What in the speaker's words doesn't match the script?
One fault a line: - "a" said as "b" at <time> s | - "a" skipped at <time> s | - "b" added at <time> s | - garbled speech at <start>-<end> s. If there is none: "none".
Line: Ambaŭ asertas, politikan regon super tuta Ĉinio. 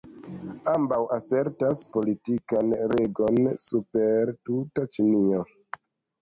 none